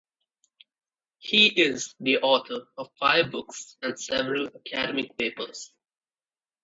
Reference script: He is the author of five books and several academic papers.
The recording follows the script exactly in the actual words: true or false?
true